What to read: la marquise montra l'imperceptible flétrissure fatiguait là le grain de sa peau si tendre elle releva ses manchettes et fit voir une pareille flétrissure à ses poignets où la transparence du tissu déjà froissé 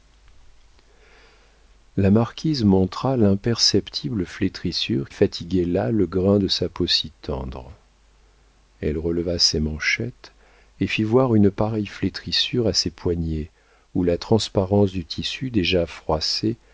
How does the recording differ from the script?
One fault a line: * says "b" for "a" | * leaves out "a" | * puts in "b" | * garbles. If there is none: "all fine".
all fine